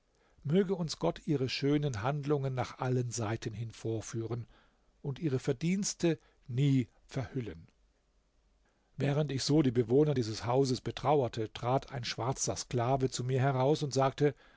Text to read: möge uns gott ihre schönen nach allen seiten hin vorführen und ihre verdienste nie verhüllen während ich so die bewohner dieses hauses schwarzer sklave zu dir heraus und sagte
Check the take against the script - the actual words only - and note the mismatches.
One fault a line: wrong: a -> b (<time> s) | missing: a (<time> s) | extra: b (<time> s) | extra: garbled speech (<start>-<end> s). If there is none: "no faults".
extra: handlungen (2.0 s)
extra: betrauerte trat ein (10.8 s)
wrong: dir -> mir (13.2 s)